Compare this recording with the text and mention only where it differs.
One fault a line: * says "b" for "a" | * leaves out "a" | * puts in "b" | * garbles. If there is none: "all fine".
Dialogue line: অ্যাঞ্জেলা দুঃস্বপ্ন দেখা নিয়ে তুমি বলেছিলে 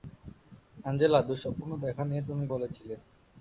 all fine